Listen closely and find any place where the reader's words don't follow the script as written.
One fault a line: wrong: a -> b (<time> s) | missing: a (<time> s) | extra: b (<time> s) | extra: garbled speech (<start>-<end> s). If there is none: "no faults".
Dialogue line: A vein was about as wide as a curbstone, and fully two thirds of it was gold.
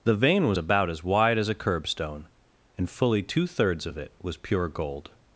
wrong: A -> The (0.0 s)
extra: pure (4.4 s)